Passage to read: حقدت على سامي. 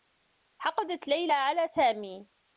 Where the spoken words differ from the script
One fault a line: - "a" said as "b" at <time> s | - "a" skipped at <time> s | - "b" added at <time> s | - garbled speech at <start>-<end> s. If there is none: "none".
- "ليلى" added at 1.1 s